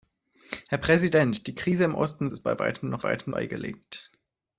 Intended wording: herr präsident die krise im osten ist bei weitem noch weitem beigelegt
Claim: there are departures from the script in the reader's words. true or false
false